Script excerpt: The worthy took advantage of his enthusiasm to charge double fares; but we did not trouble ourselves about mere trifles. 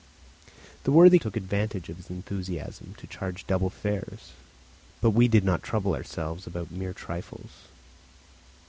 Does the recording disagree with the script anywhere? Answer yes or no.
no